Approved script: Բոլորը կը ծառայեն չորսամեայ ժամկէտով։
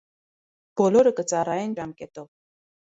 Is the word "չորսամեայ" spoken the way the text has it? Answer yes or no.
no